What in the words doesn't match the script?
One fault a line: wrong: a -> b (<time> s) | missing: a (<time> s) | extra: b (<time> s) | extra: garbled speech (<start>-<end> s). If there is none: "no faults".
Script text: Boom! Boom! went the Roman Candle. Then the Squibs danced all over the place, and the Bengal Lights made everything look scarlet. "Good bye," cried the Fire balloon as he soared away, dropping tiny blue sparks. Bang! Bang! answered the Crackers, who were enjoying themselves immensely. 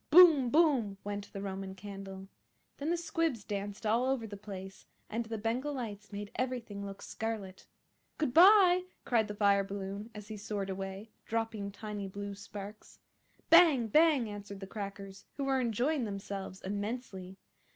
no faults